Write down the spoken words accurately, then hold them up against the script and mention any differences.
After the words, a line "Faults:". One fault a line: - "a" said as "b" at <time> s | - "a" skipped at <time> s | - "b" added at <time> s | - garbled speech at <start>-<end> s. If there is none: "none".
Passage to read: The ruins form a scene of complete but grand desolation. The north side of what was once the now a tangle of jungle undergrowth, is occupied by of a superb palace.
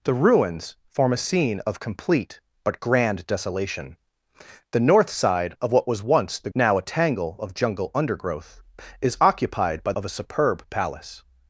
The ruins form a scene of complete but grand desolation. The north side of what was once the now a tangle of jungle undergrowth, is occupied by of a superb palace.
Faults:
none